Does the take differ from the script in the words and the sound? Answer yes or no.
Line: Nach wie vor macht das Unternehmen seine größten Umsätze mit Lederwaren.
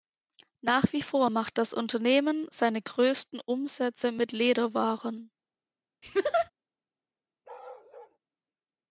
yes